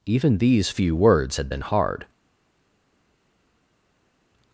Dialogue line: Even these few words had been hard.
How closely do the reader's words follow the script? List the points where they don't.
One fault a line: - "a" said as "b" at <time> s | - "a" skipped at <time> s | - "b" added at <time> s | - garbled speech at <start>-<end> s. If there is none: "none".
none